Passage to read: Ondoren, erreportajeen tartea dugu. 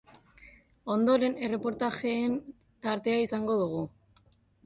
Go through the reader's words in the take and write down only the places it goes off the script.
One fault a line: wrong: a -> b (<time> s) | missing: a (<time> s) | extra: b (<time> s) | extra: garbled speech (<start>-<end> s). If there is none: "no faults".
extra: izango (3.2 s)